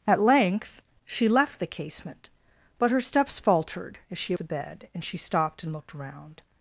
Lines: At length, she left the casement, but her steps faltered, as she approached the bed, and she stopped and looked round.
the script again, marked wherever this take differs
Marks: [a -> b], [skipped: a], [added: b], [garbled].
At length, she left the casement, but her steps faltered, as she [skipped: approached] the bed, and she stopped and looked round.